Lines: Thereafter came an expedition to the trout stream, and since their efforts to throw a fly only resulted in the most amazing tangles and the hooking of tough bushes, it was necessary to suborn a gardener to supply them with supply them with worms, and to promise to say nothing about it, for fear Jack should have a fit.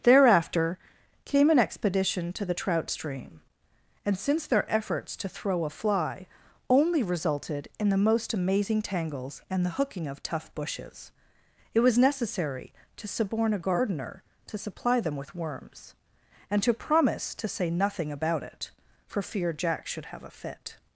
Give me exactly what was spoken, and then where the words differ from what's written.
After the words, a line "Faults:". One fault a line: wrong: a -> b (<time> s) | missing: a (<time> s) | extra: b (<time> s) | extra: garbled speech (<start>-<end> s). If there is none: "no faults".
Thereafter came an expedition to the trout stream, and since their efforts to throw a fly only resulted in the most amazing tangles and the hooking of tough bushes, it was necessary to suborn a gardener to supply them with worms, and to promise to say nothing about it, for fear Jack should have a fit.
Faults:
missing: supply them with (15.3 s)